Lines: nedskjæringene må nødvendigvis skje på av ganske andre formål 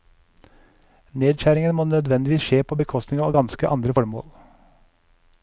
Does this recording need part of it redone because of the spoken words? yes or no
yes